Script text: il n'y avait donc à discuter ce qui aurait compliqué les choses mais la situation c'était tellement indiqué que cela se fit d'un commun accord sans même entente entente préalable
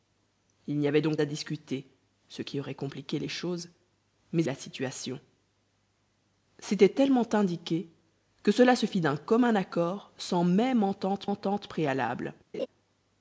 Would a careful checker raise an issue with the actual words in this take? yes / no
no